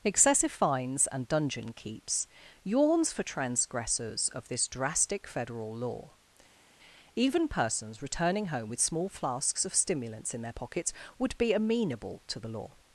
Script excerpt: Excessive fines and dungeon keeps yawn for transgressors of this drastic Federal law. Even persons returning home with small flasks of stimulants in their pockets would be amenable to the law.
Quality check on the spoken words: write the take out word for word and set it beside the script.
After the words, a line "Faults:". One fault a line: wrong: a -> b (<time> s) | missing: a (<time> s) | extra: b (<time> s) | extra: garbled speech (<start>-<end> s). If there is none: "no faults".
Excessive fines and dungeon keeps yawns for transgressors of this drastic Federal law. Even persons returning home with small flasks of stimulants in their pockets would be amenable to the law.
Faults:
wrong: yawn -> yawns (2.6 s)